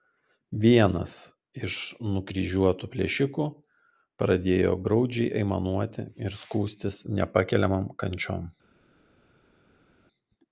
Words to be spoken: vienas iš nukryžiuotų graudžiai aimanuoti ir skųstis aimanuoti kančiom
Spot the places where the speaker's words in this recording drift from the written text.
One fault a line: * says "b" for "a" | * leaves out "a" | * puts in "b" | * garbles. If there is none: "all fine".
* puts in "plėšikų pradėjo"
* says "nepakeliamom" for "aimanuoti"